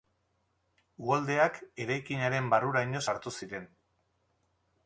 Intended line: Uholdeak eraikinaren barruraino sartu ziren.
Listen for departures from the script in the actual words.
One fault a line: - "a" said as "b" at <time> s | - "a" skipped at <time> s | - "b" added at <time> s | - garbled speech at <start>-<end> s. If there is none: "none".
none